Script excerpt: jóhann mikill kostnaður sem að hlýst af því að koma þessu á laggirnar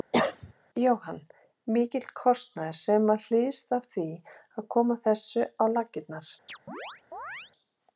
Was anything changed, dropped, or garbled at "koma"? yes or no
no